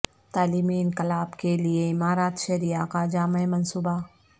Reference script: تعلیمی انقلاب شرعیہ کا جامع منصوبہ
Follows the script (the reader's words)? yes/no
no